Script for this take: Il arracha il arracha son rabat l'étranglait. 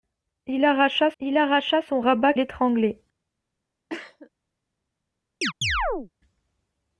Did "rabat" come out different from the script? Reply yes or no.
no